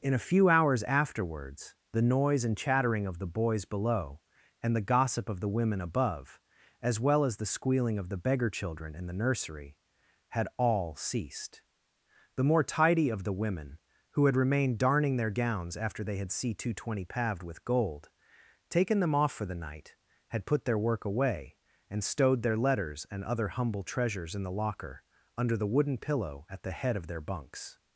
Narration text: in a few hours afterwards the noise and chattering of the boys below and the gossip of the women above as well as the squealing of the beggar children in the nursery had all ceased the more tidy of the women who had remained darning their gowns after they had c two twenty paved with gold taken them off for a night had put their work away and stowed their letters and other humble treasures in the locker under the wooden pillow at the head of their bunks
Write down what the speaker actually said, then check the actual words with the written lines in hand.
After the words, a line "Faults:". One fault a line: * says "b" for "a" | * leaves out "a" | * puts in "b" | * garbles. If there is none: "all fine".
in a few hours afterwards the noise and chattering of the boys below and the gossip of the women above as well as the squealing of the beggar children in the nursery had all ceased the more tidy of the women who had remained darning their gowns after they had c two twenty paved with gold taken them off for the night had put their work away and stowed their letters and other humble treasures in the locker under the wooden pillow at the head of their bunks
Faults:
* says "the" for "a"